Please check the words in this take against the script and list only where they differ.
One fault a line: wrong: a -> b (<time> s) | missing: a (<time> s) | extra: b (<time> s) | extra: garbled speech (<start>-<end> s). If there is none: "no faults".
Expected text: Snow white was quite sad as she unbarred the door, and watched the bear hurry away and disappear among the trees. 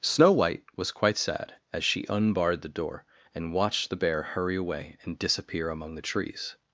no faults